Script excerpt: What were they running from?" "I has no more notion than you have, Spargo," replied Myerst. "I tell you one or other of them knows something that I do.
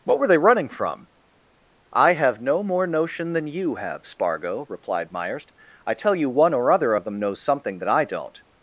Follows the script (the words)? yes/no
no